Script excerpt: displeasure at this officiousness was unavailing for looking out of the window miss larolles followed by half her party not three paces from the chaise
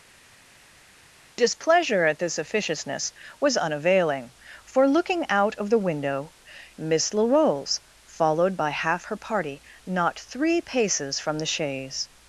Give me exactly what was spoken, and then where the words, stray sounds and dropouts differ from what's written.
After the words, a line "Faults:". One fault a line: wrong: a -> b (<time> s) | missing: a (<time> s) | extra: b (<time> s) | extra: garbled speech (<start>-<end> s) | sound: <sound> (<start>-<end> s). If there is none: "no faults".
displeasure at this officiousness was unavailing for looking out of the window miss larolles followed by half her party not three paces from the chaise
Faults:
no faults